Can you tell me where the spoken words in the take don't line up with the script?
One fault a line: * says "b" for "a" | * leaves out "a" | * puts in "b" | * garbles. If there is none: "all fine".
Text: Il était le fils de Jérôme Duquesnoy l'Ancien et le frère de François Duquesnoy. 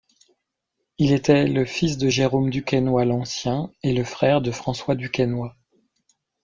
all fine